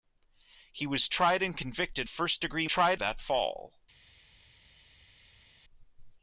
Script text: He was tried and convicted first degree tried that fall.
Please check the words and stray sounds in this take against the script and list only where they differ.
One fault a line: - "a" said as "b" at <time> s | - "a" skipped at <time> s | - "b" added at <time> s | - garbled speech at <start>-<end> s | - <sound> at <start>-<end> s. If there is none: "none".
none